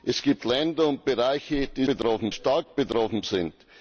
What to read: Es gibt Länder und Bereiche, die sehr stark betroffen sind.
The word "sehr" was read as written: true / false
false